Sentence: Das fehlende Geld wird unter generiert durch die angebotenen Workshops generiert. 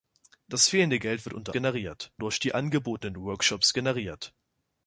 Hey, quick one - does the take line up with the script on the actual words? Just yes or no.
yes